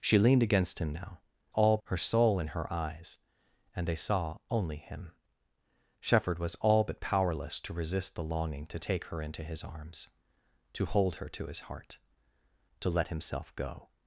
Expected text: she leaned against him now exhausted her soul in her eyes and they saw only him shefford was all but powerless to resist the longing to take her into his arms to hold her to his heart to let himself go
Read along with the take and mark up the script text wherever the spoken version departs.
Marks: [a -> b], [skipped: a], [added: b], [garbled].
she leaned against him now [exhausted -> all] her soul in her eyes and they saw only him shefford was all but powerless to resist the longing to take her into his arms to hold her to his heart to let himself go